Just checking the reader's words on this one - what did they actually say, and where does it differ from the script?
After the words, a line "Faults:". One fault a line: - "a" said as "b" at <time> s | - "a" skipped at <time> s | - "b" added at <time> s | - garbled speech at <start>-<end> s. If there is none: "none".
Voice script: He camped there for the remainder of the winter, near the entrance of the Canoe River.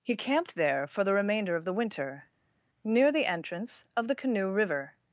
He camped there for the remainder of the winter, near the entrance of the Canoe River.
Faults:
none